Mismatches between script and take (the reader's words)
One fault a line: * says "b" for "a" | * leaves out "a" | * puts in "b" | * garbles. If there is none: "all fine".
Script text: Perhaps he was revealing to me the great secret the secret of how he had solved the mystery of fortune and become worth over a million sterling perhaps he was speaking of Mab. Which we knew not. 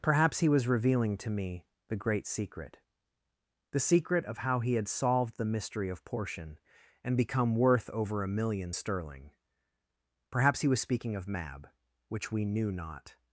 * says "portion" for "fortune"